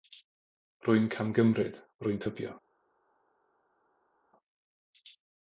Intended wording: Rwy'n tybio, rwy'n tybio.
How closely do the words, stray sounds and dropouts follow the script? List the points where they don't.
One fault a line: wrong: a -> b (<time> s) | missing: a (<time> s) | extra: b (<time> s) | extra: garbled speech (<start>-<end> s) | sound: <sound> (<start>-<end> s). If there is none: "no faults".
wrong: tybio -> camgymryd (1.1 s)